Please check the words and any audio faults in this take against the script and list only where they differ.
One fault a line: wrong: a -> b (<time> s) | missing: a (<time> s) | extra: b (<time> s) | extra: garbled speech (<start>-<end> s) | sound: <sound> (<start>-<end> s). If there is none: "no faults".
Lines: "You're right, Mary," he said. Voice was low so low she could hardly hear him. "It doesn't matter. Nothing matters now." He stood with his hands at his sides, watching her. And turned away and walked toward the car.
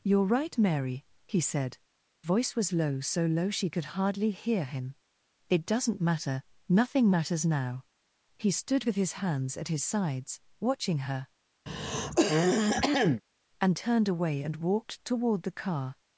sound: throat clearing (11.7-13.2 s)